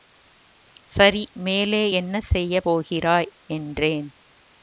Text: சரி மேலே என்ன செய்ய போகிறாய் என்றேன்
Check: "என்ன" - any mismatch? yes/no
no